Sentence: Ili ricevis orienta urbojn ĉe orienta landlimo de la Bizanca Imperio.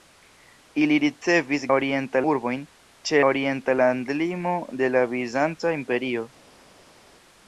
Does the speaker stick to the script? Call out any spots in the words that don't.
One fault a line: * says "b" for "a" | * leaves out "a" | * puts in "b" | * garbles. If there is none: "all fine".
all fine